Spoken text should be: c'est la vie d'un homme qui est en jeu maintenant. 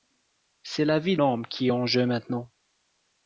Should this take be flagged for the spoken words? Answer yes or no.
yes